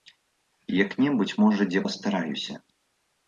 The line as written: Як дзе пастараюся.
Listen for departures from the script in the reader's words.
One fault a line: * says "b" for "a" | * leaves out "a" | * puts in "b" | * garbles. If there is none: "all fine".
* puts in "небудзь можа"